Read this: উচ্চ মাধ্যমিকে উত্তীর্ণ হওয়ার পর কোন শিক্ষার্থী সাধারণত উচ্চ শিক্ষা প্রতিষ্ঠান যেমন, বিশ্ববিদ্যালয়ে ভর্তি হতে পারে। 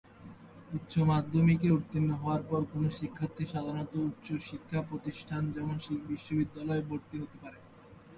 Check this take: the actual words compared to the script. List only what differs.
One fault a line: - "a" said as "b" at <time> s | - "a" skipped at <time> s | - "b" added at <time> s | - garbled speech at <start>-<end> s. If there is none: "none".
none